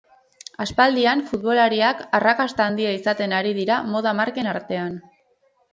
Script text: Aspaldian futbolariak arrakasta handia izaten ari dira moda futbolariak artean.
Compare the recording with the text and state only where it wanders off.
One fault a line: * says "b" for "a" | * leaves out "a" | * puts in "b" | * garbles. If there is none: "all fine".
* says "marken" for "futbolariak"